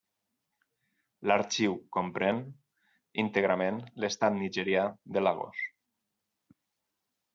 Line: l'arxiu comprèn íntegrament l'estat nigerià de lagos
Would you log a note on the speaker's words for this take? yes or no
no